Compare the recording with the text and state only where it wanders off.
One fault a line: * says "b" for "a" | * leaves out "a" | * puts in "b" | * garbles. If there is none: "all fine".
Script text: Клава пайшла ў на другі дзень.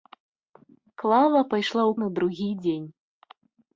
all fine